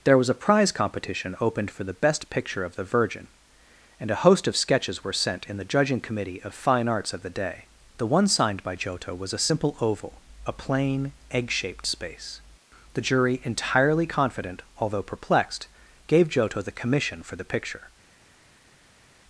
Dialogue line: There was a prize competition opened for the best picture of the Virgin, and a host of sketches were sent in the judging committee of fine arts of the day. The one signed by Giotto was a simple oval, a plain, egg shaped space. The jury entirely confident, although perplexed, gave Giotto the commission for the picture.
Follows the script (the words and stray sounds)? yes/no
yes